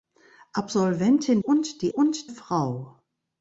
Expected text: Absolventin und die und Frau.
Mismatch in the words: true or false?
false